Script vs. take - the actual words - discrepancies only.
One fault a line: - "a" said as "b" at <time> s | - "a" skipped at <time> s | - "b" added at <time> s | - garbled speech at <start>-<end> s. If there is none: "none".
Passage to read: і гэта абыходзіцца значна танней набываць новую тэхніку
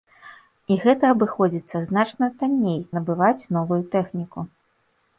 none